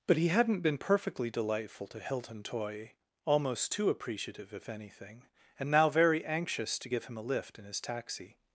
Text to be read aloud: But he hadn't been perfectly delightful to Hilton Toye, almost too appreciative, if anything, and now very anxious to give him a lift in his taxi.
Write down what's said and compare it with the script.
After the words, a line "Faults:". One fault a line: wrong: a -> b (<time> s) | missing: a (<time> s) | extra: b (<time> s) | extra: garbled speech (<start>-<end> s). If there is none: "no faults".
But he hadn't been perfectly delightful to Hilton Toye, almost too appreciative, if anything, and now very anxious to give him a lift in his taxi.
Faults:
no faults